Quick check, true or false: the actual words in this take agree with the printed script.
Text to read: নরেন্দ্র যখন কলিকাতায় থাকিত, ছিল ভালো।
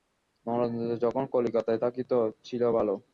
true